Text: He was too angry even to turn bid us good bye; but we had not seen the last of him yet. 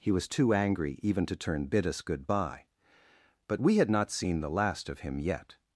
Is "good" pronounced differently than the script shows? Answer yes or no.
no